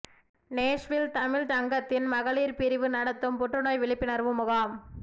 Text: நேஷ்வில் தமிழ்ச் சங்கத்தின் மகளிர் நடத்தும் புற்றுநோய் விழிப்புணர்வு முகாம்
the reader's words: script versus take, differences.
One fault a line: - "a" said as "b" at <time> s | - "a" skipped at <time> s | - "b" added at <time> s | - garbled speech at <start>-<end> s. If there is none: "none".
- "பிரிவு" added at 2.6 s